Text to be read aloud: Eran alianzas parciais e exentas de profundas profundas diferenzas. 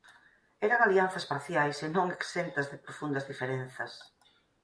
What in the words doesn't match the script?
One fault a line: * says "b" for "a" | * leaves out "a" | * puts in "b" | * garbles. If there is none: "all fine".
* puts in "non"
* leaves out "profundas"